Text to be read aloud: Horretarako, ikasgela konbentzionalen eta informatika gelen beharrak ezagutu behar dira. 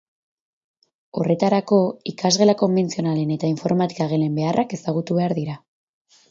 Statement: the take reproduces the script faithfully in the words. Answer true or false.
true